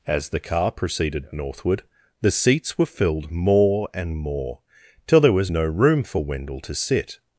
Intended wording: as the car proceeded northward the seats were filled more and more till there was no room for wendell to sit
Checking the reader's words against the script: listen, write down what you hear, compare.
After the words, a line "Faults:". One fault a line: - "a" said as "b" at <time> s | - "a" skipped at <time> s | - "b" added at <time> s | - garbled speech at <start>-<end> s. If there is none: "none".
as the car proceeded northward the seats were filled more and more till there was no room for wendell to sit
Faults:
none